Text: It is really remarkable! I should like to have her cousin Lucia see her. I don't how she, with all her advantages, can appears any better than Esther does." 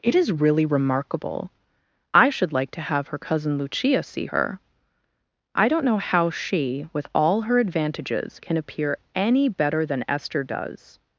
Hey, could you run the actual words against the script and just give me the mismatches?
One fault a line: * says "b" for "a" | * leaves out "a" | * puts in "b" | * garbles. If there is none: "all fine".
* puts in "know"
* says "appear" for "appears"